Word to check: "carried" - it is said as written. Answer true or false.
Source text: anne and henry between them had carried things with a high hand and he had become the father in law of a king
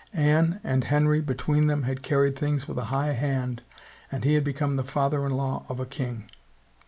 true